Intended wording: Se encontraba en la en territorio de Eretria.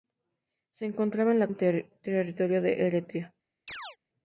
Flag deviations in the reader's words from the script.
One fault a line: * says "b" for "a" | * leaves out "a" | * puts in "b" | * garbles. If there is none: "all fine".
all fine